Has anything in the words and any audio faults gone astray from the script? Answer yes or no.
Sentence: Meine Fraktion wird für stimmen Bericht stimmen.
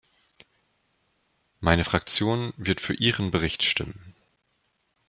yes